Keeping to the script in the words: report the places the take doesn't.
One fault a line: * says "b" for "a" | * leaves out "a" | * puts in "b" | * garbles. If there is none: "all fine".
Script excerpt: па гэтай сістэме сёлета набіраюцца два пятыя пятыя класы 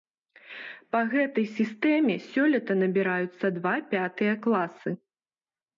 * leaves out "пятыя"